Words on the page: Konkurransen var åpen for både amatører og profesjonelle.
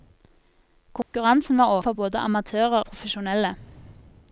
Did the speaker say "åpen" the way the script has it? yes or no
no